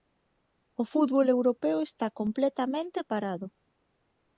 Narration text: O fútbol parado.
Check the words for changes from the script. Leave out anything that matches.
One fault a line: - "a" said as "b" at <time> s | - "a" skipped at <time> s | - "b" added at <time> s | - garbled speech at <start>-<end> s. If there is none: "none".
- "europeo está completamente" added at 1.4 s